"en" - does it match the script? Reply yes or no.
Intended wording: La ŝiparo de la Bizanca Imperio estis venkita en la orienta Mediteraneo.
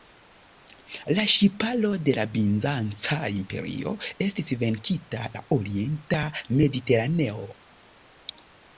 no